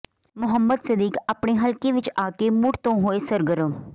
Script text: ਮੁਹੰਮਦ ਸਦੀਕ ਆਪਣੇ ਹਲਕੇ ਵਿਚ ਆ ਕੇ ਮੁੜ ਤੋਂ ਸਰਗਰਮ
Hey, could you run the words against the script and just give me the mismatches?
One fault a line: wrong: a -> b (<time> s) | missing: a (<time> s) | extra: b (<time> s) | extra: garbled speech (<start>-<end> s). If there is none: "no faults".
extra: ਹੋਏ (3.0 s)